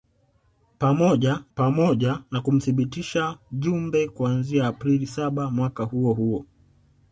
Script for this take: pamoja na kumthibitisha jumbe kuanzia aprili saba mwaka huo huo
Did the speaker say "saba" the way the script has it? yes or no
yes